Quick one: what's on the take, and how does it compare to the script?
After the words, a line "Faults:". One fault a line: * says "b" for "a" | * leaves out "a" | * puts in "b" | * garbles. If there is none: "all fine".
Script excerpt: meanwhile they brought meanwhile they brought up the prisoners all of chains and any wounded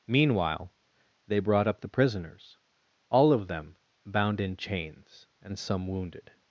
meanwhile they brought up the prisoners all of them bound in chains and some wounded
Faults:
* leaves out "meanwhile they brought"
* puts in "them bound in"
* says "some" for "any"